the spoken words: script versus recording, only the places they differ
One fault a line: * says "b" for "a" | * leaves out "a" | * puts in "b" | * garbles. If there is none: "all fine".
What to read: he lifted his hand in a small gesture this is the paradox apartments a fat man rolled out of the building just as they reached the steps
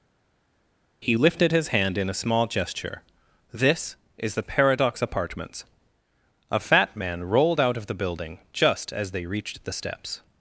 all fine